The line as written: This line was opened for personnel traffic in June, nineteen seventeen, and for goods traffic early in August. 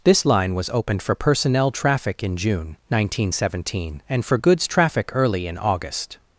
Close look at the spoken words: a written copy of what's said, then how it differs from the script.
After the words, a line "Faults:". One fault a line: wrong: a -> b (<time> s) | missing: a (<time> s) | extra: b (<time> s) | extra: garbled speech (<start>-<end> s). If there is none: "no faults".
This line was opened for personnel traffic in June, nineteen seventeen, and for goods traffic early in August.
Faults:
no faults